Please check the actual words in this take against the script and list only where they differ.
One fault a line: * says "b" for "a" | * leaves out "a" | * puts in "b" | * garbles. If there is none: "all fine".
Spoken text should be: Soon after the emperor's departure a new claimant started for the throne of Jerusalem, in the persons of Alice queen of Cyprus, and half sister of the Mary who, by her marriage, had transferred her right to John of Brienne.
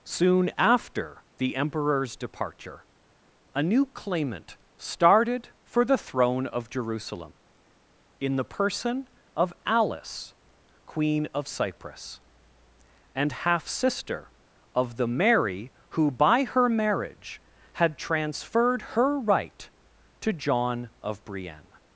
* says "person" for "persons"